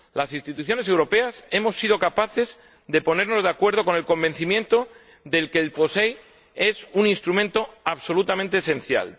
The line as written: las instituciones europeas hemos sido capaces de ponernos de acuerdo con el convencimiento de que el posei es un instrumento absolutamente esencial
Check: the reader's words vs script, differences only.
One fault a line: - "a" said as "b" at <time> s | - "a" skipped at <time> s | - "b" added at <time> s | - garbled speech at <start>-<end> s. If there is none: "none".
none